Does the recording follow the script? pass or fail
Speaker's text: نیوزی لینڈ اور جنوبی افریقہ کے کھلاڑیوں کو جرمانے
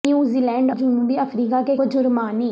fail